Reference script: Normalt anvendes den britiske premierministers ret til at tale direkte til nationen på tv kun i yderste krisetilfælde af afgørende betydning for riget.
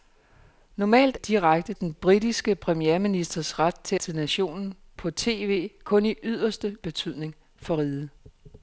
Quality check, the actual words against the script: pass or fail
fail